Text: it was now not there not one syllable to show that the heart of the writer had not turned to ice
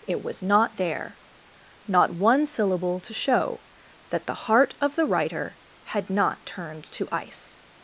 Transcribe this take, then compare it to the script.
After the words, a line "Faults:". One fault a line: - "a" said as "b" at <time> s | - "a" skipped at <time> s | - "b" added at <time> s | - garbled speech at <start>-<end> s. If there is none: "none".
it was not there not one syllable to show that the heart of the writer had not turned to ice
Faults:
- "now" skipped at 0.4 s